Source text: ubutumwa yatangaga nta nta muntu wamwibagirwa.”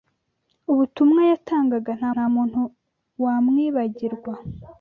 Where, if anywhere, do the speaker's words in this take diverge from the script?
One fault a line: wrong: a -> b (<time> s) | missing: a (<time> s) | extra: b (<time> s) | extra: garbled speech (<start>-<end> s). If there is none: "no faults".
no faults